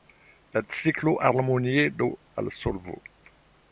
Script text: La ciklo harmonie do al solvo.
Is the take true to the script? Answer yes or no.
yes